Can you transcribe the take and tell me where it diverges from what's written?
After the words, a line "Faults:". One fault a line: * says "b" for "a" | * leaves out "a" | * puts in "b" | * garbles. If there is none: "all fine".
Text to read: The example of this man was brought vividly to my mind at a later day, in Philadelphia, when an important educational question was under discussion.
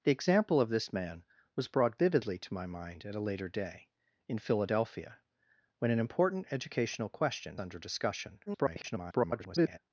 The example of this man was brought vividly to my mind at a later day, in Philadelphia, when an important educational question under discussion. [garbled]
Faults:
* leaves out "was"
* garbles